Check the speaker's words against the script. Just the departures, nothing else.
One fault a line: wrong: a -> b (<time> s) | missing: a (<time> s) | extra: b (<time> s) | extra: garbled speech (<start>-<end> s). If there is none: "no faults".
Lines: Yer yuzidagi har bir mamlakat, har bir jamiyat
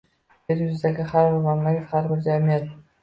no faults